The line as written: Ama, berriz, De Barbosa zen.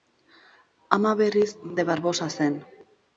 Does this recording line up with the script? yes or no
yes